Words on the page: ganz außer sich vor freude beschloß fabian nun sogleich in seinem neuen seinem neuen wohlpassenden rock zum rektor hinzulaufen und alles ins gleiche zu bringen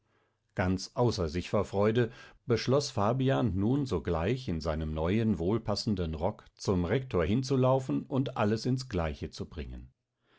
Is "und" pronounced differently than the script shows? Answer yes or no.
no